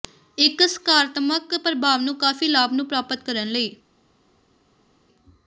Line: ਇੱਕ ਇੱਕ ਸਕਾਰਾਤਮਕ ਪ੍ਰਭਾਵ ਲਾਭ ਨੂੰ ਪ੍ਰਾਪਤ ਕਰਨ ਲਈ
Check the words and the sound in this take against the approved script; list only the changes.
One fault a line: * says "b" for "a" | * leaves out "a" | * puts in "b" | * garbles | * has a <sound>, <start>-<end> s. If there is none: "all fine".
* leaves out "ਇੱਕ"
* puts in "ਨੂੰ ਕਾਫ਼ੀ"